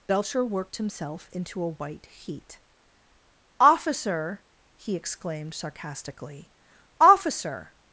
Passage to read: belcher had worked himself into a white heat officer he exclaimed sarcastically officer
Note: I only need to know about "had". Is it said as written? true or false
false